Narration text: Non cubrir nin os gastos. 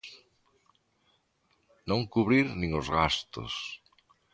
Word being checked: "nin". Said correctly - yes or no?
yes